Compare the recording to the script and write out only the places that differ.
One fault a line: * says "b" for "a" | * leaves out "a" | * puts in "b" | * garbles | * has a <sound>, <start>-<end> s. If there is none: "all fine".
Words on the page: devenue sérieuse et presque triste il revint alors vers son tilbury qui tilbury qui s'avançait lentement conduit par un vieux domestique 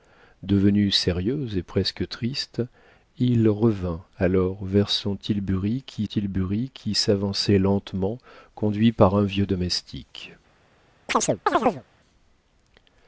* has a chirp, 11.1-11.8 s